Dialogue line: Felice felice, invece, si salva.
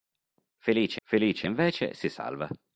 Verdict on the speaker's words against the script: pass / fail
pass